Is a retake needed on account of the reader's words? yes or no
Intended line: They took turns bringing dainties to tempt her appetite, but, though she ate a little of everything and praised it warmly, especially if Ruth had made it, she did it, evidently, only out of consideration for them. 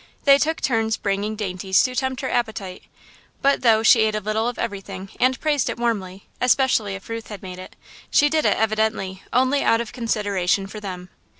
no